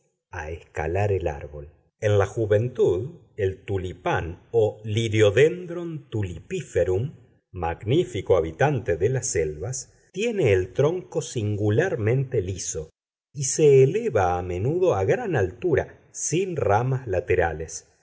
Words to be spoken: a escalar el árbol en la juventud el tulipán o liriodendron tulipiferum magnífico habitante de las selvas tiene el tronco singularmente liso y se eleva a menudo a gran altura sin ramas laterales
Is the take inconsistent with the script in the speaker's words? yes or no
no